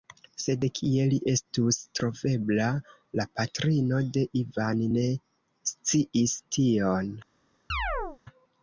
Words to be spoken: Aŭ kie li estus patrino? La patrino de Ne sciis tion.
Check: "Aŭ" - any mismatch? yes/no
yes